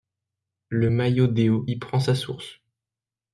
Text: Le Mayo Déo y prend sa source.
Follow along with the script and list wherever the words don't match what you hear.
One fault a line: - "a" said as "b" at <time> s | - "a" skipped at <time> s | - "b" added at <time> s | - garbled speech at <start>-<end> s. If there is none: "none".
none